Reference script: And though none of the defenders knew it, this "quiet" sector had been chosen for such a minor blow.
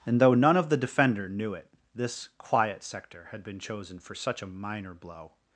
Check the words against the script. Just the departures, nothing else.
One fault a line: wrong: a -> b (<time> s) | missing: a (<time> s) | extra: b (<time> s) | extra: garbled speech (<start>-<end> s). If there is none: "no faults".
wrong: defenders -> defender (0.8 s)